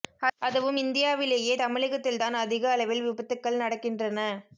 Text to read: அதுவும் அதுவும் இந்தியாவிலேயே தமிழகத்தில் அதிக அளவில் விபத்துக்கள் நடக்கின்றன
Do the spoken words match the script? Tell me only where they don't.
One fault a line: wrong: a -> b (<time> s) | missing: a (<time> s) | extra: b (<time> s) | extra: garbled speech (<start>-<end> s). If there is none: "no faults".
missing: அதுவும் (0.8 s)
extra: தான் (2.2 s)